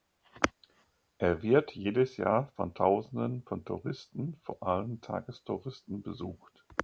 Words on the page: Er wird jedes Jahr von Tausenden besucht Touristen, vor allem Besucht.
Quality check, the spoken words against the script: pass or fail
fail